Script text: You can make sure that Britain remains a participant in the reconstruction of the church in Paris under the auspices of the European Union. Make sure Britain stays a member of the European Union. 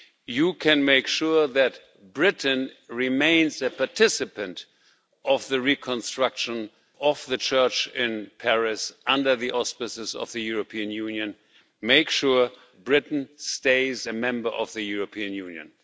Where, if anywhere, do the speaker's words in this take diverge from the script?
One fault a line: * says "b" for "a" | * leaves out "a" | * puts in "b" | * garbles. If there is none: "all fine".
all fine